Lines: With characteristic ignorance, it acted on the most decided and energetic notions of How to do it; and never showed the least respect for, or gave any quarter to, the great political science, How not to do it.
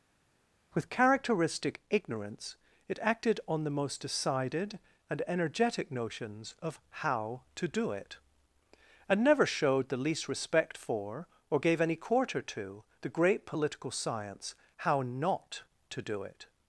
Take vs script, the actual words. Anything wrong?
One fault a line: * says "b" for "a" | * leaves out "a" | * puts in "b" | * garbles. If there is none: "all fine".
all fine